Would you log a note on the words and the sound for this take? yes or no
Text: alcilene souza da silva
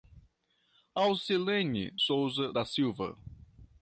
no